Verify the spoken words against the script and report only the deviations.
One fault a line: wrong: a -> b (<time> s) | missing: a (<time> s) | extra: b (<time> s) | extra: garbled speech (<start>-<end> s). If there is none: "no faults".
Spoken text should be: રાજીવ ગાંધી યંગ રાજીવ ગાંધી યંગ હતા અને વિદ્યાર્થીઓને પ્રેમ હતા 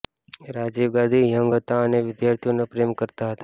missing: રાજીવ ગાંધી યંગ (1.5 s)
extra: કરતા (3.0 s)